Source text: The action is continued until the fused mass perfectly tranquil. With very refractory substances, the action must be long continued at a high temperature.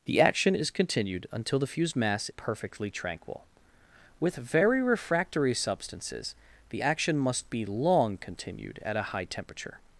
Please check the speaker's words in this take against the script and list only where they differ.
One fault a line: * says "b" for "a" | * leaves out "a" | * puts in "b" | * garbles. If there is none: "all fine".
all fine